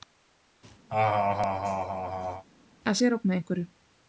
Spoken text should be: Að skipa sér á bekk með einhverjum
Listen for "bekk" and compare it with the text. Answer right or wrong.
wrong